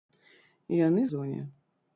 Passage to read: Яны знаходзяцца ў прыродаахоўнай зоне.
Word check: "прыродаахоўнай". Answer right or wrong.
wrong